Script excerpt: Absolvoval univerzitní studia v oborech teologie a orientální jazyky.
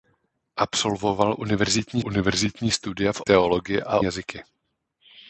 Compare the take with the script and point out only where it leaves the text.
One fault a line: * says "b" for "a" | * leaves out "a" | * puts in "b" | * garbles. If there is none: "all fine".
* puts in "univerzitní"
* leaves out "oborech"
* leaves out "orientální"